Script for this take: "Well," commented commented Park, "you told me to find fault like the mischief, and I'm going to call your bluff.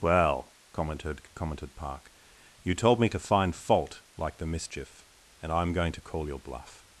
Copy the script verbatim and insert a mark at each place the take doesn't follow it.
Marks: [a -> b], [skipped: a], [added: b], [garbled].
"Well," commented commented Park, "you told me to find fault like the mischief, and I'm going to call your bluff.